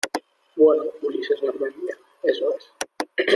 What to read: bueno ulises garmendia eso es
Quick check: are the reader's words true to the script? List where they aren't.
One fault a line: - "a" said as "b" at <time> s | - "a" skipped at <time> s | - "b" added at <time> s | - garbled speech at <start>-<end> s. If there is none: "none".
none